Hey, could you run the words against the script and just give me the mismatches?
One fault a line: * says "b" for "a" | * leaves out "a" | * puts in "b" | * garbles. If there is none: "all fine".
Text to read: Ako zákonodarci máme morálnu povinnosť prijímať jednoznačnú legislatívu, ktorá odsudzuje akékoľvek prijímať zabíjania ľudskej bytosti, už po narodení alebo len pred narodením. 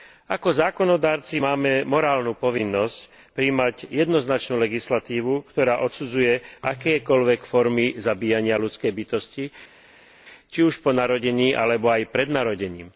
* says "formy" for "prijímať"
* puts in "či"
* says "aj" for "len"